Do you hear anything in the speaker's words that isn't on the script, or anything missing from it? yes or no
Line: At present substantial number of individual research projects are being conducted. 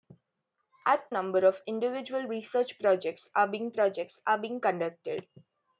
yes